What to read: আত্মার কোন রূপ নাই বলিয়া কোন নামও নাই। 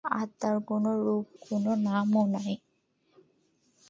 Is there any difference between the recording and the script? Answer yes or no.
yes